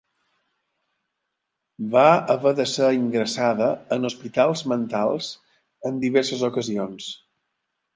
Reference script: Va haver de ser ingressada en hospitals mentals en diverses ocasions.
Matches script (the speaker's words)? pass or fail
pass